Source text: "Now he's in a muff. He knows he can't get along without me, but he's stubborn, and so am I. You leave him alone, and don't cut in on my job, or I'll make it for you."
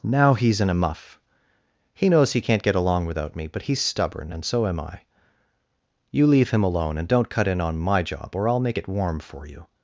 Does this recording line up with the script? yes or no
no